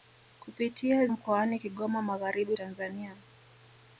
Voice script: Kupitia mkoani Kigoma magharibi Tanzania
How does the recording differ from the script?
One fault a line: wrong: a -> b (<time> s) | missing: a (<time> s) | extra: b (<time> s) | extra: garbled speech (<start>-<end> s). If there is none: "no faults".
no faults